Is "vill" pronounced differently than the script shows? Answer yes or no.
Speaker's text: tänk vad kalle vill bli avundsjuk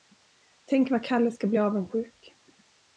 yes